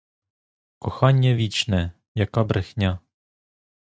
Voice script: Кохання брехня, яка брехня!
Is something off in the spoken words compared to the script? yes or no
yes